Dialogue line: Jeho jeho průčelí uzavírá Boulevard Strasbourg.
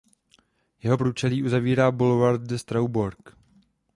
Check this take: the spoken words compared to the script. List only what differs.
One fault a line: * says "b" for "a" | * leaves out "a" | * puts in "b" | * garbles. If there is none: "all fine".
* leaves out "jeho"
* puts in "de"